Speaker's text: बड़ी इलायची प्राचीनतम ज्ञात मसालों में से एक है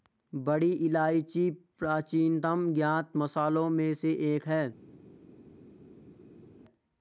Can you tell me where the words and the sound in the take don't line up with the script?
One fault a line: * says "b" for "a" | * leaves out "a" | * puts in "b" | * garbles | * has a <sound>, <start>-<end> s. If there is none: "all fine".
all fine